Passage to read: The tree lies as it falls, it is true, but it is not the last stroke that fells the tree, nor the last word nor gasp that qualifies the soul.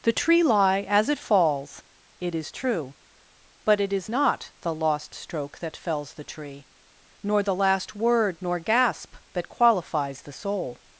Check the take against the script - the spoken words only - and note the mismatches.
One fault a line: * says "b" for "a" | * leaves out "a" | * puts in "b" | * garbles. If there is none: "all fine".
* says "lie" for "lies"
* says "lost" for "last"